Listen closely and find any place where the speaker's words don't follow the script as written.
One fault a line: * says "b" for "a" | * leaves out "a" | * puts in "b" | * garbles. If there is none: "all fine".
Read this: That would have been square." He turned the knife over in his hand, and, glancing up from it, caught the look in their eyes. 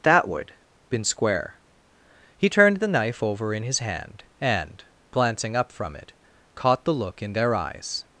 * leaves out "have"